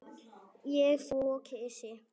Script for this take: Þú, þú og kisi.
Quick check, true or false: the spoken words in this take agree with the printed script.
false